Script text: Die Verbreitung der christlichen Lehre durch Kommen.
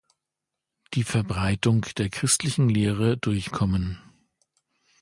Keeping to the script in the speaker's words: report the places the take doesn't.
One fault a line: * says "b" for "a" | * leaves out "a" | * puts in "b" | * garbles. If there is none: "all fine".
all fine